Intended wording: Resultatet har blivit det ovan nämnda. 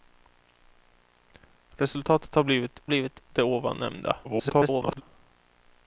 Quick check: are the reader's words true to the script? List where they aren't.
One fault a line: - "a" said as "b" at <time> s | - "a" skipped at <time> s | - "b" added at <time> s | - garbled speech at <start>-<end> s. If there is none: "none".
- "blivit" added at 2.9 s
- garbled speech at 4.2-5.0 s